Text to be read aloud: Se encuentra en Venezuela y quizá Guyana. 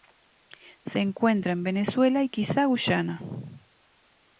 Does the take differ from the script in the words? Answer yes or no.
no